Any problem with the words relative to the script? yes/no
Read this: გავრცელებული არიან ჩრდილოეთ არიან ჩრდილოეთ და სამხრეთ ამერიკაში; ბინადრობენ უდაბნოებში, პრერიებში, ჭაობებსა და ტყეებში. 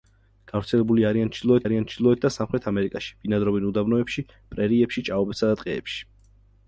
no